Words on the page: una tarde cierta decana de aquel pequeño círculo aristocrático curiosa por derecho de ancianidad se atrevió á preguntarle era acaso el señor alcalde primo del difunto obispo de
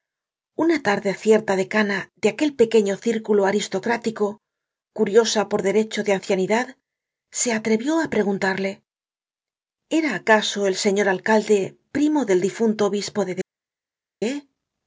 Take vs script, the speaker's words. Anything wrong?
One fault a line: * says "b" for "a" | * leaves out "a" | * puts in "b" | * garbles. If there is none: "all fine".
all fine